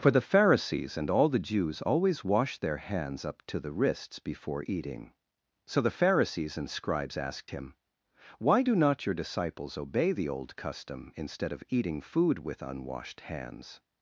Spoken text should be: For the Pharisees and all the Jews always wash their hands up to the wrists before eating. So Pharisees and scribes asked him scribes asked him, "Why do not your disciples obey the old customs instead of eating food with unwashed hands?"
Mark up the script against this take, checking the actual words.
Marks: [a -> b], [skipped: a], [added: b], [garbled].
For the Pharisees and all the Jews always wash their hands up to the wrists before eating. So [added: the] Pharisees and scribes asked him [skipped: scribes asked him,] "Why do not your disciples obey the old [customs -> custom] instead of eating food with unwashed hands?"